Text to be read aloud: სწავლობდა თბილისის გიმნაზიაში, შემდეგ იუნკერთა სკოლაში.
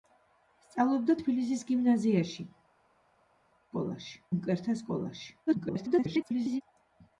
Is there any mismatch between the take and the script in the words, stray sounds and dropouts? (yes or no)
yes